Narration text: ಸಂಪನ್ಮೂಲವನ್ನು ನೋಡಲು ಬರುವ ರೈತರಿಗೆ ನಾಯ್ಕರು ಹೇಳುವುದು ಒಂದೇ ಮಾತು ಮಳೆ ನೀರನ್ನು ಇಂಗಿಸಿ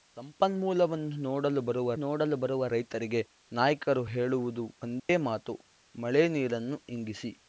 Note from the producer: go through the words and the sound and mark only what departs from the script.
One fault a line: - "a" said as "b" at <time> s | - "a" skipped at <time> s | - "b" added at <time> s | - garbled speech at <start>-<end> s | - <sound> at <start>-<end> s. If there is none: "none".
- "ನೋಡಲು ಬರುವ" added at 2.0 s
- dropout at 5.0-5.1 s